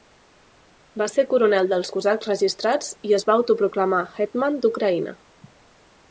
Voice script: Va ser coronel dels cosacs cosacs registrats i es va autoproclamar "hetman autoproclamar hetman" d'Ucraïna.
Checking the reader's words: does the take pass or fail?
fail